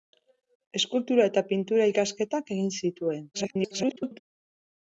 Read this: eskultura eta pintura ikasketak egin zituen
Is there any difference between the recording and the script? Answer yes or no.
yes